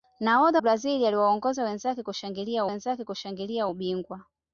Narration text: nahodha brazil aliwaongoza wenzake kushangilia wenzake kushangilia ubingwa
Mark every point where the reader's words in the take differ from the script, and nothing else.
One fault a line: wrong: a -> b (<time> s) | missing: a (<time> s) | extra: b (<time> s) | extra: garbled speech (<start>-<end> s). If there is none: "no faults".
no faults